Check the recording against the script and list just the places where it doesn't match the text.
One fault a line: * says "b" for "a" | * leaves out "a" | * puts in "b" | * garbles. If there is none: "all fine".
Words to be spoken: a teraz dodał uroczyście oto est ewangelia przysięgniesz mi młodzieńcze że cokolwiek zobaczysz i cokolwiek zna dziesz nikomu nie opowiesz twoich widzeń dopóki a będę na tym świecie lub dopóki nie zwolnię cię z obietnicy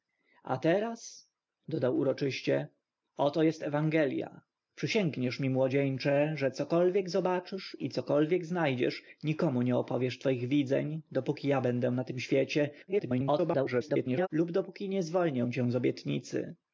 * garbles